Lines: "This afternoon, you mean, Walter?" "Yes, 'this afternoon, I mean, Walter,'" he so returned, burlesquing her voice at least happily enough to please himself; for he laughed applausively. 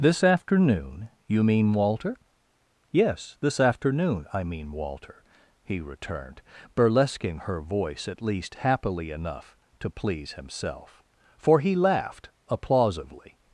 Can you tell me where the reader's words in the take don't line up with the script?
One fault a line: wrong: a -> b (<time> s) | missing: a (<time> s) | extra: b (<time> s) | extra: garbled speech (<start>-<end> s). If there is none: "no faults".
missing: so (5.8 s)